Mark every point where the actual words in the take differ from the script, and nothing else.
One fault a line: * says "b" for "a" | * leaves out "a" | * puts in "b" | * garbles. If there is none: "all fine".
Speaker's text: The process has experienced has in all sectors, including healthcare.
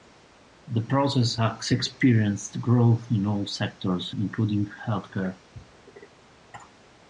* says "growth" for "has"